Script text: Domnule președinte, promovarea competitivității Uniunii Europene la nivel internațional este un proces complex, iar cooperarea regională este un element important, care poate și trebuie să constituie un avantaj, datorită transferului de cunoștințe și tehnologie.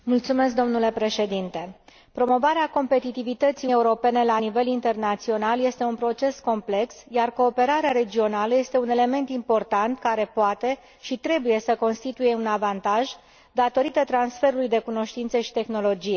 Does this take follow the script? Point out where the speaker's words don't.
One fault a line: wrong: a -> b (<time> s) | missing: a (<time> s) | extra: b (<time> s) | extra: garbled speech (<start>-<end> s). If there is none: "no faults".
missing: Uniunii (3.7 s)